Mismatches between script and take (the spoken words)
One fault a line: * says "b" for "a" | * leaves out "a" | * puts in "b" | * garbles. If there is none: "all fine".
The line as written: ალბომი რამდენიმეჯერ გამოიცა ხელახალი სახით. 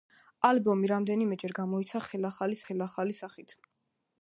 * puts in "ხელახალი"